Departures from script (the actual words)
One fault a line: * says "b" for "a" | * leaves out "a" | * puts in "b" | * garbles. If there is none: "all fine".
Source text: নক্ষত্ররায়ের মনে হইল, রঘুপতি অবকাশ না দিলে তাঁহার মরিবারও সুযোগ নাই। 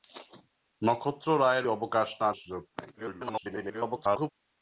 * leaves out "মনে হইল রঘুপতি"
* leaves out "দিলে তাঁহার মরিবারও"
* garbles